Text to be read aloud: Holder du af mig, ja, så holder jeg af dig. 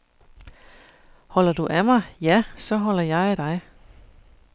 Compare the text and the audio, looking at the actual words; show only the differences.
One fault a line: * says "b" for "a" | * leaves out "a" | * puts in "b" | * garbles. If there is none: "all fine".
all fine